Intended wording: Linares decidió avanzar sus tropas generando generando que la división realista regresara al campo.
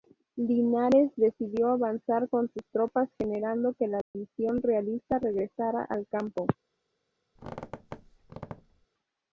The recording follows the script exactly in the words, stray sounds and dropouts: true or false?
false